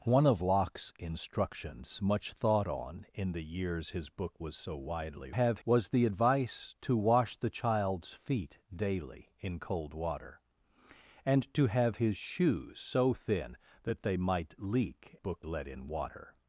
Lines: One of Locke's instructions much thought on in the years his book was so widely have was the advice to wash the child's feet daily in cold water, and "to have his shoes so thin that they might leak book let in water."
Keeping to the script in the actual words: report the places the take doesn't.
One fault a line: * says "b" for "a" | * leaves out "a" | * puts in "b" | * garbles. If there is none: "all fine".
all fine